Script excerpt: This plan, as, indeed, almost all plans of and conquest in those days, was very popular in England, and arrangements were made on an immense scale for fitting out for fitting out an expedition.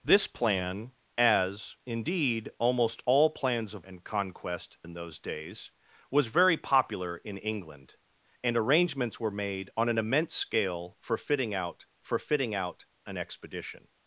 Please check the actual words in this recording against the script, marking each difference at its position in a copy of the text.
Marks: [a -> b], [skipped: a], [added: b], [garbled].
This plan, as, indeed, almost all plans of and conquest in those days, was very popular in England, and arrangements were made on an immense scale for fitting out for fitting out an expedition.